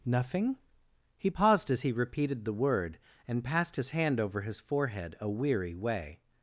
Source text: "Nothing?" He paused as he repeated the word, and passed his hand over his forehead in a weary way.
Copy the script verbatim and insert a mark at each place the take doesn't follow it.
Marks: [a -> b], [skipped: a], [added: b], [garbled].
"Nothing?" He paused as he repeated the word, and passed his hand over his forehead [skipped: in] a weary way.